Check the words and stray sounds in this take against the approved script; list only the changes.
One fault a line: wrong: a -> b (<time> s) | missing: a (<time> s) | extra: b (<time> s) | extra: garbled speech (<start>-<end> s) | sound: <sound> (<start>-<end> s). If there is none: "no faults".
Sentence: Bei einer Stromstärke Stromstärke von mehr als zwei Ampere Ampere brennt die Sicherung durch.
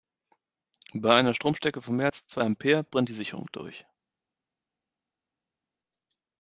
missing: Stromstärke (1.8 s)
missing: Ampere (2.8 s)